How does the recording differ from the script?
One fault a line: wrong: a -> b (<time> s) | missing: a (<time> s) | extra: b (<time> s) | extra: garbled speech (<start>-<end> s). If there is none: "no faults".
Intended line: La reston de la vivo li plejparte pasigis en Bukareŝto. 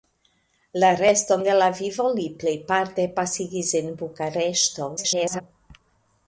extra: garbled speech (5.0-5.4 s)